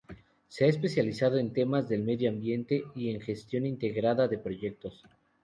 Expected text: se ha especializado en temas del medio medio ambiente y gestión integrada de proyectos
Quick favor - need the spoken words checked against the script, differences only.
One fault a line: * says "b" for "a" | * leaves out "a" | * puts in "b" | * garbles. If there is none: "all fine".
* leaves out "medio"
* puts in "en"